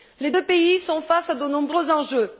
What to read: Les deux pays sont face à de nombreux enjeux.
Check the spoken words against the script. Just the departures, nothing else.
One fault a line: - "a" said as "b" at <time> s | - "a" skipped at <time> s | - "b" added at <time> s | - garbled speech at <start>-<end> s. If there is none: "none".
none